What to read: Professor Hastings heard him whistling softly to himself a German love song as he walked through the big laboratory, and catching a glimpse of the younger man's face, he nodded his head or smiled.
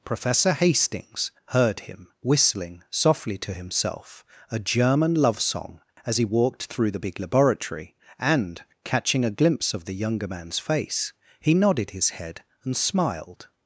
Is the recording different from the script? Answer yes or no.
yes